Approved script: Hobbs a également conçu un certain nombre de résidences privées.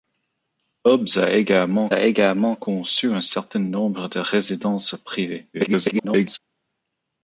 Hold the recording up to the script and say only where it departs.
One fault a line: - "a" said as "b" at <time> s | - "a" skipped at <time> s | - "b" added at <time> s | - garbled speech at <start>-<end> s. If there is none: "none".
- "a également" added at 1.9 s
- garbled speech at 5.5-6.4 s